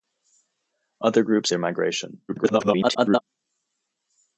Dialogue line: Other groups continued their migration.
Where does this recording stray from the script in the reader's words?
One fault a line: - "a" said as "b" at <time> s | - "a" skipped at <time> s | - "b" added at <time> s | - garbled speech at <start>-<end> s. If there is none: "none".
- "continued" skipped at 1.5 s
- garbled speech at 2.3-3.2 s